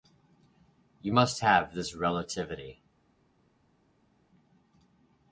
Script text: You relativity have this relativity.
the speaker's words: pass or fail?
fail